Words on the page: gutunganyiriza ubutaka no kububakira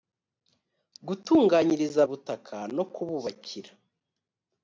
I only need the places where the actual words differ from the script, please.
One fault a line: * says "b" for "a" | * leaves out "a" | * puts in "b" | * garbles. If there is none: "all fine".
all fine